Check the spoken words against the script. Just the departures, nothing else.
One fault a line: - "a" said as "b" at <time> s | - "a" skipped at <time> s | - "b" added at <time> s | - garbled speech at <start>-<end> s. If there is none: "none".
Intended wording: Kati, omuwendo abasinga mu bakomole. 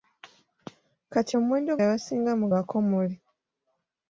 none